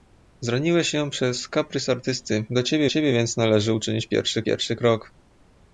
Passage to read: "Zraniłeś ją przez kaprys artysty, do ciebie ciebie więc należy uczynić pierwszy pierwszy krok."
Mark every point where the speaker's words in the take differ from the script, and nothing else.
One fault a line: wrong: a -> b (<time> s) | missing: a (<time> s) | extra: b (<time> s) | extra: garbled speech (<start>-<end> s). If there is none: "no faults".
no faults